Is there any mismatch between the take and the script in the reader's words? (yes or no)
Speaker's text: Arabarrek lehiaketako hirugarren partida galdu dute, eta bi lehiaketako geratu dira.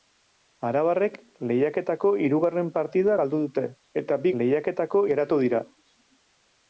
no